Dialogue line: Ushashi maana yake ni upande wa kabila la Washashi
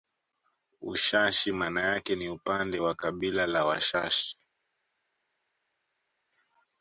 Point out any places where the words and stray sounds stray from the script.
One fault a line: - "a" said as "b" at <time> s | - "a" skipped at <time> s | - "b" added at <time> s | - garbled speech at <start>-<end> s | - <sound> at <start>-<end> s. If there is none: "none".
none